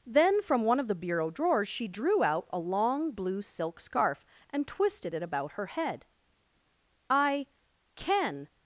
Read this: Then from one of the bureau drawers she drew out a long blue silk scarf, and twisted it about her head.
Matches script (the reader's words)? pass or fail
fail